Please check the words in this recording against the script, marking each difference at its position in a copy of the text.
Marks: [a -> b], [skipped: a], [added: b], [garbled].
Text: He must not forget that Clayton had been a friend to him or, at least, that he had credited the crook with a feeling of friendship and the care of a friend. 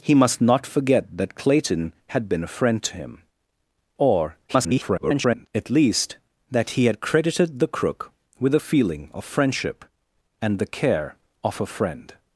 He must not forget that Clayton had been a friend to him or, [garbled] at least, that he had credited the crook with a feeling of friendship and the care of a friend.